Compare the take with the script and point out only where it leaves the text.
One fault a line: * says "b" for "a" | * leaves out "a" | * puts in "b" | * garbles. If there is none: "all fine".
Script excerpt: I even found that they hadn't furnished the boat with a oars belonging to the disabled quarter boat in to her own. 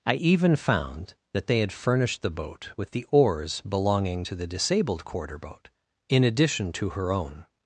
* says "had" for "hadn't"
* says "the" for "a"
* puts in "addition"